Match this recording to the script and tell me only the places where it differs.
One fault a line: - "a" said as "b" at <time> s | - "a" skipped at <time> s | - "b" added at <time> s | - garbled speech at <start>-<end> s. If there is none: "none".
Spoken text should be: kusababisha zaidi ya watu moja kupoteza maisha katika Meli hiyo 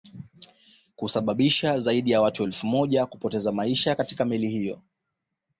- "elfu" added at 2.4 s